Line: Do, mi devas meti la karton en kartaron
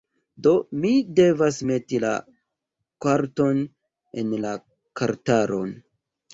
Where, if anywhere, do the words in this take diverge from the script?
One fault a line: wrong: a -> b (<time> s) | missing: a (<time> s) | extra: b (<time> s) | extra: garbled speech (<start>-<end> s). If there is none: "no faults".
extra: la (4.4 s)